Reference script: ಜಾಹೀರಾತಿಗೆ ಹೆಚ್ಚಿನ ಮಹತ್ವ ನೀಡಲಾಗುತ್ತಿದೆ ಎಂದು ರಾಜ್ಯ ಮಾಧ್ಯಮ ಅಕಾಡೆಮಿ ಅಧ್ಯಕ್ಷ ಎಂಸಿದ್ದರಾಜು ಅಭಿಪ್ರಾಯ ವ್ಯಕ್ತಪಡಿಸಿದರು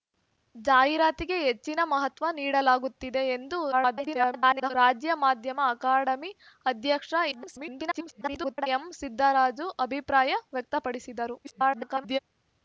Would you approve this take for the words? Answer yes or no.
no